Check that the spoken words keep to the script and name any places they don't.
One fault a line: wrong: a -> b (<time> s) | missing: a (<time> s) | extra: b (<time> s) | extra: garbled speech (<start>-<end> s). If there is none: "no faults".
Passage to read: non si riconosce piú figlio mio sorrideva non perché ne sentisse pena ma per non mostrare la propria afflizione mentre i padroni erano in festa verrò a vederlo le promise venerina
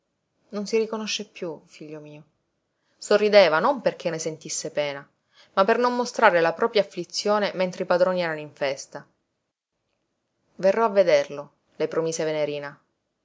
no faults